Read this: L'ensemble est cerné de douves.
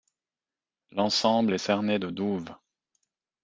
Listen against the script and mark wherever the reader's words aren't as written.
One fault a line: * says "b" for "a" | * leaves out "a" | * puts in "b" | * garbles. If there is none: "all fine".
all fine